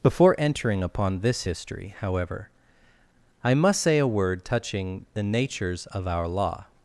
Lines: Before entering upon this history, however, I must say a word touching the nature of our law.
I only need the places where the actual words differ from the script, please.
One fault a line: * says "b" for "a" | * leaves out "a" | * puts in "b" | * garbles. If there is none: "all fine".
* says "natures" for "nature"